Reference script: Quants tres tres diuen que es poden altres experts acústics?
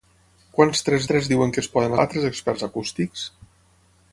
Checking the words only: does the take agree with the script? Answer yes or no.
yes